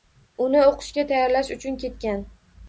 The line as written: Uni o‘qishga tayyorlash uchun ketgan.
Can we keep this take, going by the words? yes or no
yes